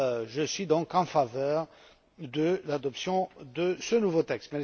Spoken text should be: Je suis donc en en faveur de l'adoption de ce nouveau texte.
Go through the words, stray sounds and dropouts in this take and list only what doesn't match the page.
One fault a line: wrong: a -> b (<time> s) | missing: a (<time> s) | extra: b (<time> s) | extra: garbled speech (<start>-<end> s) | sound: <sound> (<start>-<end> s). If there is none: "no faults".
missing: en (1.0 s)